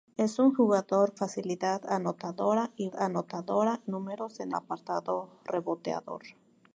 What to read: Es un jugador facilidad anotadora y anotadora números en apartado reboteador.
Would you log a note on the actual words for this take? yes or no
no